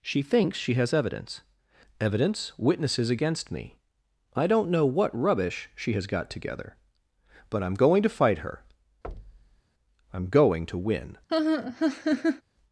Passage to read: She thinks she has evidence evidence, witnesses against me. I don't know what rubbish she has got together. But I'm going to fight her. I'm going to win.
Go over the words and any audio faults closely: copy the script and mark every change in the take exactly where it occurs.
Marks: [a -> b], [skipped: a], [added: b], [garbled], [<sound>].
She thinks she has evidence evidence, witnesses against me. I don't know what rubbish she has got together. But I'm going to fight her. [thud] I'm going to win. [laugh]